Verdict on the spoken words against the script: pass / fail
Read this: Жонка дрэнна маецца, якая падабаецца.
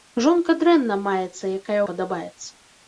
pass